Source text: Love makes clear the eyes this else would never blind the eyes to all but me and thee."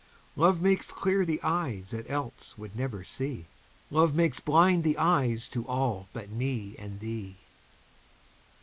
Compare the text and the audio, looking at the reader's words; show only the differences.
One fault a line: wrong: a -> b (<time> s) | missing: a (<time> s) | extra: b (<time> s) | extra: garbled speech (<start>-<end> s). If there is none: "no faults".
wrong: this -> that (1.9 s)
extra: see Love makes (3.0 s)